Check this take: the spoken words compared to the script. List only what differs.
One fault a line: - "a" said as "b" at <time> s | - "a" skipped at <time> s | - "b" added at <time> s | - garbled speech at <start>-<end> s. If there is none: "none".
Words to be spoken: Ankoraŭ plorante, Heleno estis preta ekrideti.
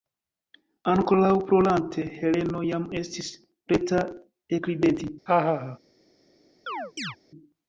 - "jam" added at 2.7 s